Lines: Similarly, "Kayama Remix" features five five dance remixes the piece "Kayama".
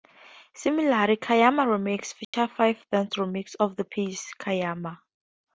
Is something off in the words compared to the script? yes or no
yes